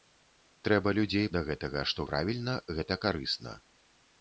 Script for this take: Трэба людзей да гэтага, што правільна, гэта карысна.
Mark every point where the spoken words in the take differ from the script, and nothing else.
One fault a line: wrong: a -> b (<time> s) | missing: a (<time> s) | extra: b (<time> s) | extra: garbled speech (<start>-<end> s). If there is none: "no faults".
no faults